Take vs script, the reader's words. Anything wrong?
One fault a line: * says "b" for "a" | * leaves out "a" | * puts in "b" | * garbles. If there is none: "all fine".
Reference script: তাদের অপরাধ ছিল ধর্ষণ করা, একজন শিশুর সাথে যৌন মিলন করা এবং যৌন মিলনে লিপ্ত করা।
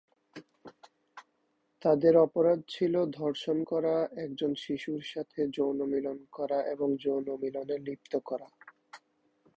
all fine